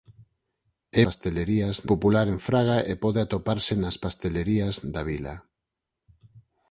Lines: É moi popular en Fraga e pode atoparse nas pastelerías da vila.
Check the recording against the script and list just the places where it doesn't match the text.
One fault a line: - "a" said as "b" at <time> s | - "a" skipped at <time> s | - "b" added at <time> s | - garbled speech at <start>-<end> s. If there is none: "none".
- "moi" said as "pastelerías" at 1.0 s